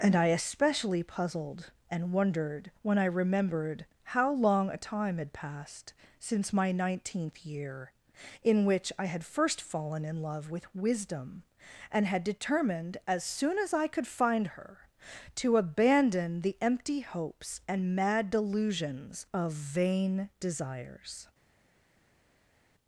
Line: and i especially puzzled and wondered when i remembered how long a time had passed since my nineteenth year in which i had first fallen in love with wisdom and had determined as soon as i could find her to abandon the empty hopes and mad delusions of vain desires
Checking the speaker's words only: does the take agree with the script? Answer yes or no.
yes